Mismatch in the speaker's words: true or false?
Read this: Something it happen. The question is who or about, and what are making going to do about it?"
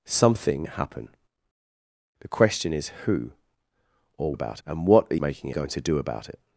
false